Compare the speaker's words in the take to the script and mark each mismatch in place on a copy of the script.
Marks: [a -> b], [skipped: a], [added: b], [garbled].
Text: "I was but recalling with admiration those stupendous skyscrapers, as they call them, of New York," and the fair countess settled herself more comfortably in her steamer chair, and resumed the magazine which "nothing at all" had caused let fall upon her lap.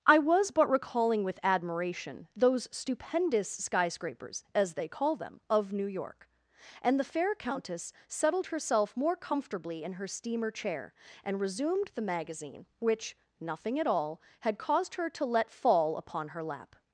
"I was but recalling with admiration those stupendous skyscrapers, as they call them, of New York," and the fair countess settled herself more comfortably in her steamer chair, and resumed the magazine which "nothing at all" had caused [added: her to] let fall upon her lap.